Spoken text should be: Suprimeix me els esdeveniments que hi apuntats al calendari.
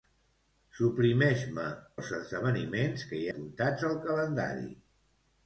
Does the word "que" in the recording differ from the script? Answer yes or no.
no